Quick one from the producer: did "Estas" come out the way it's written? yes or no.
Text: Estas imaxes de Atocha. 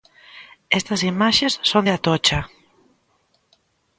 yes